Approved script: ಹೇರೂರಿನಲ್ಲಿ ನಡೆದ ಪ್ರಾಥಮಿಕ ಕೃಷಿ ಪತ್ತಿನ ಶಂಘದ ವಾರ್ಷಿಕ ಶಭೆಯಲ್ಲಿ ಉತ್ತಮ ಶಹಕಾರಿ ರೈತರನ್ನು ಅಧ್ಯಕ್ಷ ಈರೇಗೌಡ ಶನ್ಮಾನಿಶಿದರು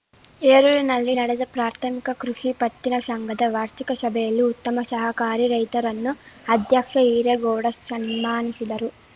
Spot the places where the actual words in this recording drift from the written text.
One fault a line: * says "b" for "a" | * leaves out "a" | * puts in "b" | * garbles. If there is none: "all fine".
all fine